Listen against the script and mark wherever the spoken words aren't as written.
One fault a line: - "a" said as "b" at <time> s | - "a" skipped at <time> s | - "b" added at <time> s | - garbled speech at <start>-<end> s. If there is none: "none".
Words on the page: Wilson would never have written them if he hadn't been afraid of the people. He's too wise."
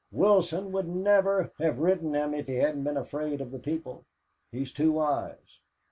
none